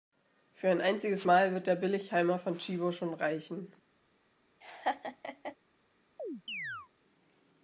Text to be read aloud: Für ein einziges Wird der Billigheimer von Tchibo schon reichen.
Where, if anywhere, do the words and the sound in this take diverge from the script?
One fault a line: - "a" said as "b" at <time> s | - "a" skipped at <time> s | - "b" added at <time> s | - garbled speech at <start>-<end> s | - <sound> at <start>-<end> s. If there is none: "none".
- "Mal" added at 1.2 s
- laugh at 4.6-5.6 s
- chirp at 6.2-6.9 s